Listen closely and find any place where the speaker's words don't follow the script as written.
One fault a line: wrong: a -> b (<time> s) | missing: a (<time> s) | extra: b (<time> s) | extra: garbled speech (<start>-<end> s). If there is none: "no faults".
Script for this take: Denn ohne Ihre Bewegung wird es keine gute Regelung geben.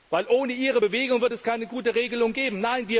no faults